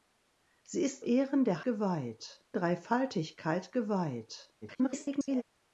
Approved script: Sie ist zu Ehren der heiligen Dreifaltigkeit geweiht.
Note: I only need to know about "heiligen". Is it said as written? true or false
false